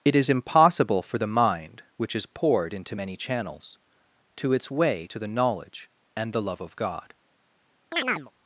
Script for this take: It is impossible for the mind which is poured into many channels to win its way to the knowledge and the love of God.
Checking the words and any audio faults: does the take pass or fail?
fail